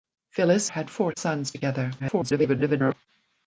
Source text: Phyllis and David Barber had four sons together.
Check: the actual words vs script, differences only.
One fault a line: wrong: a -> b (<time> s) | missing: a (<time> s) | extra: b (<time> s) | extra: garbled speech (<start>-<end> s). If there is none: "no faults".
missing: and David Barber (0.7 s)
extra: garbled speech (2.0-2.9 s)